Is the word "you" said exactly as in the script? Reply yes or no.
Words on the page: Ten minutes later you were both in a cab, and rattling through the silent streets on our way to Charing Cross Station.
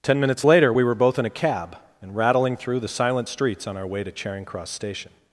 no